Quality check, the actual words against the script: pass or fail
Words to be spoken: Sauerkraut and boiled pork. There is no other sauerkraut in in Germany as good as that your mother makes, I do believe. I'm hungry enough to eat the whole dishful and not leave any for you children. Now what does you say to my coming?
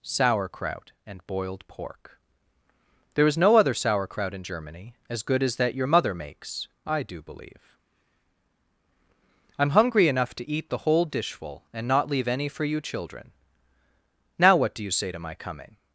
fail